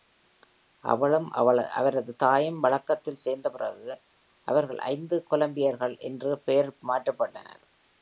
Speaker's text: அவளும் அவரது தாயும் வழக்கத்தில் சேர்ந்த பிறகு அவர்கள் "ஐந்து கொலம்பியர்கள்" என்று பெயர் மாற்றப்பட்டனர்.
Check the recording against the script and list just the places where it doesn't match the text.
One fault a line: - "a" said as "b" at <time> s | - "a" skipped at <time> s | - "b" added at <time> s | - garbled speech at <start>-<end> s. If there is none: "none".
none